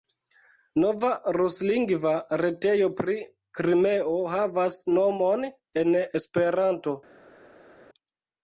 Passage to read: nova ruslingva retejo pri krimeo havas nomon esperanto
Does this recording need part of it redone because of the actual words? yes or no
yes